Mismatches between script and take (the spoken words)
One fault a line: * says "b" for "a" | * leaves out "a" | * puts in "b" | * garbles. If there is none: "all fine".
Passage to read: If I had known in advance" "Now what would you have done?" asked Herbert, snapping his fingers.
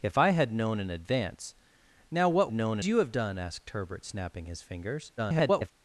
* says "known" for "would"
* garbles